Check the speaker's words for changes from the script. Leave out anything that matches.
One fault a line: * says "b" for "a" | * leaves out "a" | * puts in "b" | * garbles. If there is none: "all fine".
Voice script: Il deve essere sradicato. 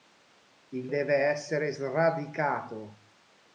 all fine